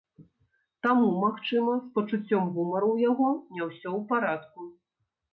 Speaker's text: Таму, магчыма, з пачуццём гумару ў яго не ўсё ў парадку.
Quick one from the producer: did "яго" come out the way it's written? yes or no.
yes